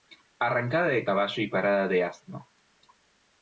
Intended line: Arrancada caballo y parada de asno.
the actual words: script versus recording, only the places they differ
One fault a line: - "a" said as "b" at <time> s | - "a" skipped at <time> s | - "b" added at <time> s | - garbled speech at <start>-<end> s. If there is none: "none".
- "de" added at 0.9 s